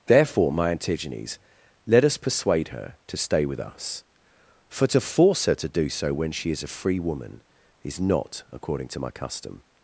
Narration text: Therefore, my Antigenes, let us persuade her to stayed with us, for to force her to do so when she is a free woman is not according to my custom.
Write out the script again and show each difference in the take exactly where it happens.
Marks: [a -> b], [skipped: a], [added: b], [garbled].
Therefore, my Antigenes, let us persuade her to [stayed -> stay] with us, for to force her to do so when she is a free woman is not according to my custom.